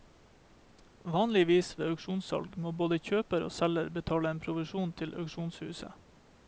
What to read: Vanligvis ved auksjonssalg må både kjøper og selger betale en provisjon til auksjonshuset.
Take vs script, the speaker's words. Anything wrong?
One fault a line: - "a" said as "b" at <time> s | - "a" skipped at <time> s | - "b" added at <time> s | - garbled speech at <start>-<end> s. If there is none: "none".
none